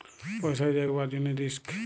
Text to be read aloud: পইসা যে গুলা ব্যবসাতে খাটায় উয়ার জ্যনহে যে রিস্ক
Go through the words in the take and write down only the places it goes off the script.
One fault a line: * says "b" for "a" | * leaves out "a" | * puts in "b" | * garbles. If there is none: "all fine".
* leaves out "গুলা ব্যবসাতে খাটায়"
* leaves out "যে"